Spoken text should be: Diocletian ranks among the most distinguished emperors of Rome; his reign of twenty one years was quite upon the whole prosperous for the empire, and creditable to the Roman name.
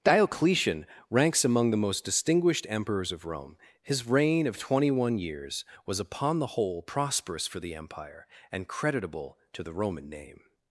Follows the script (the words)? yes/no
no